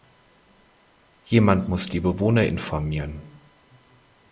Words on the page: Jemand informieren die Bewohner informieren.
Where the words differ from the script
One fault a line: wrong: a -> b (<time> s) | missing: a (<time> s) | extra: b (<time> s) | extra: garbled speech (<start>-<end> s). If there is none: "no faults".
wrong: informieren -> muss (1.7 s)